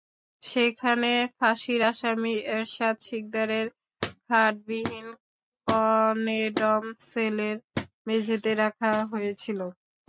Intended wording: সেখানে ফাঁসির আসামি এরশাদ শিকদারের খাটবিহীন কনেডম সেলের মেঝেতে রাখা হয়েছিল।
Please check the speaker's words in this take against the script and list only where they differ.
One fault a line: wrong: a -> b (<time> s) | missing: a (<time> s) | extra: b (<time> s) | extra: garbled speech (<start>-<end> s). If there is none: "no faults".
no faults